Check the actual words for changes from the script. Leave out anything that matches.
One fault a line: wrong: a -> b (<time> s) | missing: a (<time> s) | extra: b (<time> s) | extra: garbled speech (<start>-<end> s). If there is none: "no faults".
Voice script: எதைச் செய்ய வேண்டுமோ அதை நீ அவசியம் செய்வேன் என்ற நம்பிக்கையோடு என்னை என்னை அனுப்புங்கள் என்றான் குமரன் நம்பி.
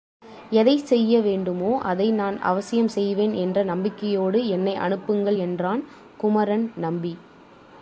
wrong: நீ -> நான் (2.1 s)
missing: என்னை (4.8 s)